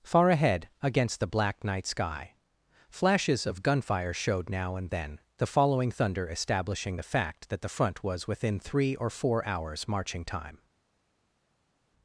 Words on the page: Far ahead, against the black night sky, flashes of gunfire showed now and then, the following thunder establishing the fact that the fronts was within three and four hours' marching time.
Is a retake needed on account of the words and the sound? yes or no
yes